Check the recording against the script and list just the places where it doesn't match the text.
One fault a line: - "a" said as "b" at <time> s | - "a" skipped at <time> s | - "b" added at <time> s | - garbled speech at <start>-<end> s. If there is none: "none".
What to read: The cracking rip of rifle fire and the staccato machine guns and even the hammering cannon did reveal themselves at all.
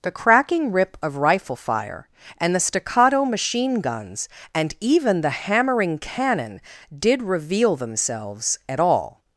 none